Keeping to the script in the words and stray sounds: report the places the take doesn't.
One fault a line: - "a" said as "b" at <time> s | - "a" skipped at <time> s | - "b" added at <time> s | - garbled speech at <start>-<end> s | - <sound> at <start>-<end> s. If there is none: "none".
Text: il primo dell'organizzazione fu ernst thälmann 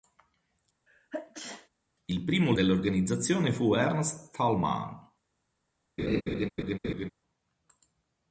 - sneeze at 0.9-1.7 s
- laugh at 6.0-7.1 s